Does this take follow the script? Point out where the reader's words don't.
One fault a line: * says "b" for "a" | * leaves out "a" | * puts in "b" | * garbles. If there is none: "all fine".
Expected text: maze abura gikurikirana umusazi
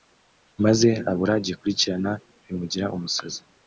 * puts in "bimugira"